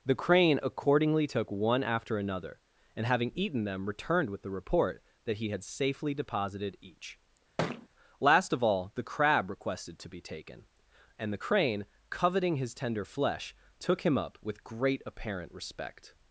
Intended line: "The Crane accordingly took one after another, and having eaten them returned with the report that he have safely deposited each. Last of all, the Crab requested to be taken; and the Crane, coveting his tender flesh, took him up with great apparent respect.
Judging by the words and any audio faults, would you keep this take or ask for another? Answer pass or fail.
fail